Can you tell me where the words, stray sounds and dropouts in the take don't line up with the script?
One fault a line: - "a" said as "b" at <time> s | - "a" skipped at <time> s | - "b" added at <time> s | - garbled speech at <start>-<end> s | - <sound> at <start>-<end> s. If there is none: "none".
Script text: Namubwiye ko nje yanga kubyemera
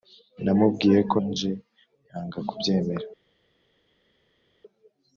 none